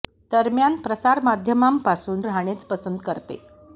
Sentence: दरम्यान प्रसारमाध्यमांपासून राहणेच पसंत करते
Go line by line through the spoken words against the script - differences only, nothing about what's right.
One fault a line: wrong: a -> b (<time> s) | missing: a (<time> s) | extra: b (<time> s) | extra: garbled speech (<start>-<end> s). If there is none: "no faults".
no faults